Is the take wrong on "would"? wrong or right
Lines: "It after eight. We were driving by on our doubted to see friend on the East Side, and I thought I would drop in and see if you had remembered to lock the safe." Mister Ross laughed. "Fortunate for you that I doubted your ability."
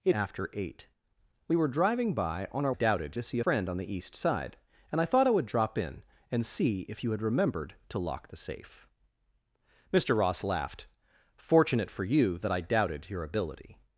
right